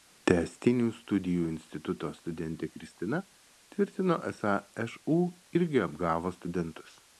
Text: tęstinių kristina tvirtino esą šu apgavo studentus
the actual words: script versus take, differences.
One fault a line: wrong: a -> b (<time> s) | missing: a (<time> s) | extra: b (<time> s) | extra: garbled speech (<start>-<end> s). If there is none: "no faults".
extra: studijų instituto studentė (1.0 s)
extra: irgi (5.6 s)